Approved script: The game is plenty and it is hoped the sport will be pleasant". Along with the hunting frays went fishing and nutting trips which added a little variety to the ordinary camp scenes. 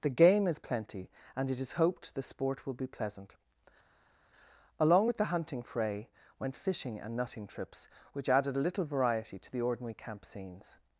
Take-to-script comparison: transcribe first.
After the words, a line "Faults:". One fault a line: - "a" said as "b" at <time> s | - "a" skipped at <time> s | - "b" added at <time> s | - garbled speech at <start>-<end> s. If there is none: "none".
The game is plenty and it is hoped the sport will be pleasant". Along with the hunting fray went fishing and nutting trips which added a little variety to the ordinary camp scenes.
Faults:
- "frays" said as "fray" at 5.6 s